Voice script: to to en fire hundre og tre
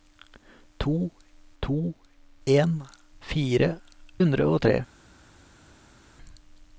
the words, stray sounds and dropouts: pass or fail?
pass